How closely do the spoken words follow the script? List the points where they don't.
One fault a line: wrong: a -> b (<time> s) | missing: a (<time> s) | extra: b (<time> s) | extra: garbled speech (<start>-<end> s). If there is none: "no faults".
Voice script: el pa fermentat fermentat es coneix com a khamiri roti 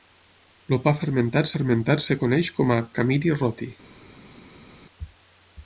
no faults